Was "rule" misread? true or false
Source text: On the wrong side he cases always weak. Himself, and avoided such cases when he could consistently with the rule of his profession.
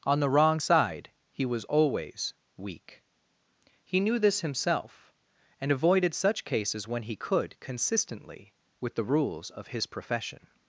true